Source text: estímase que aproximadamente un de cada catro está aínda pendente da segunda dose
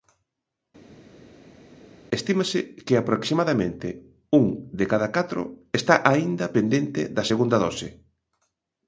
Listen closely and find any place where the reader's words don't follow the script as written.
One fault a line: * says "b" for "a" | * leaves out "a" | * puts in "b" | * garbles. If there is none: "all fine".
all fine